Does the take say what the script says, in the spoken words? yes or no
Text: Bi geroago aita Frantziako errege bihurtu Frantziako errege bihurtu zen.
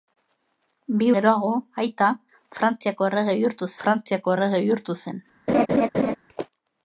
yes